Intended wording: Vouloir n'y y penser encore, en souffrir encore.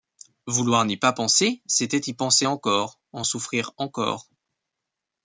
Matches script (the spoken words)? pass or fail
fail